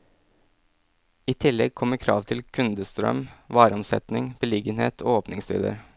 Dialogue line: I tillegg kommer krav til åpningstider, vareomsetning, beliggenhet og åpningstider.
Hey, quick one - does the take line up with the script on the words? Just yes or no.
no